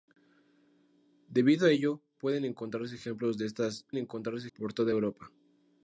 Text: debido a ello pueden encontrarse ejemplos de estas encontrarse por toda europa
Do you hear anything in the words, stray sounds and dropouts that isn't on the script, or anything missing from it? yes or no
no